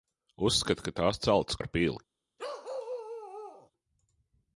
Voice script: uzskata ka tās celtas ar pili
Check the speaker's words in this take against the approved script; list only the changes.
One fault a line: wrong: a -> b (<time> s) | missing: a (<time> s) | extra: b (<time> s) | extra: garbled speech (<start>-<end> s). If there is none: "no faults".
no faults